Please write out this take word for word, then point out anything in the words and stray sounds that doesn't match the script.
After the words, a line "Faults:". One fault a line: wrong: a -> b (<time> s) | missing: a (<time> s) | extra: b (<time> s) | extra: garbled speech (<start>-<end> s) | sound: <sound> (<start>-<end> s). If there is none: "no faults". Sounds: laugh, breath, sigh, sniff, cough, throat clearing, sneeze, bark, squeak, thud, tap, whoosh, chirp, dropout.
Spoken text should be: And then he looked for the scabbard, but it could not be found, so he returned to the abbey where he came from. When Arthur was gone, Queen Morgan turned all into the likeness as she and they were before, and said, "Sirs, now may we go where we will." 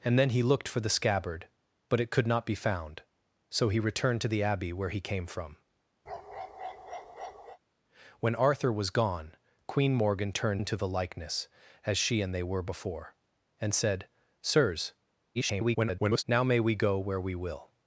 And then he looked for the scabbard, but it could not be found, so he returned to the abbey where he came from. When Arthur was gone, Queen Morgan turned into the likeness as she and they were before, and said, "Sirs, [garbled] now may we go where we will."
Faults:
sound: bark (6.1-7.6 s)
missing: all (10.6 s)
extra: garbled speech (15.3-16.2 s)